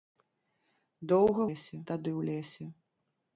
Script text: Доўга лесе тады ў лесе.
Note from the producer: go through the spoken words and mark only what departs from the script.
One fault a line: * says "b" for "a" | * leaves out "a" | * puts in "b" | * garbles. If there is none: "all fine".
all fine